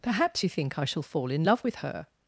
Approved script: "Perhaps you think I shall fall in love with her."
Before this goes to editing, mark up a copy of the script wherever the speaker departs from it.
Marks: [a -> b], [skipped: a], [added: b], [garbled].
"Perhaps you think I shall fall in love with her."